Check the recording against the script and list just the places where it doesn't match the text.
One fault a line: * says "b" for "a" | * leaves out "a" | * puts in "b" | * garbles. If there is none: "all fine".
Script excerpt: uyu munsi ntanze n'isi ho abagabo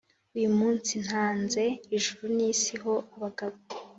* puts in "ijuru"